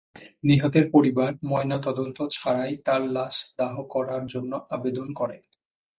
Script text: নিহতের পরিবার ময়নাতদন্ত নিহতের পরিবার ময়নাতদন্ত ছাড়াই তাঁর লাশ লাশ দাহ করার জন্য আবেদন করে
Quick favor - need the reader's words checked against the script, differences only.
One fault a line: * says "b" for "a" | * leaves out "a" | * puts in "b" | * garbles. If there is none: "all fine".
* leaves out "নিহতের পরিবার ময়নাতদন্ত"
* leaves out "লাশ"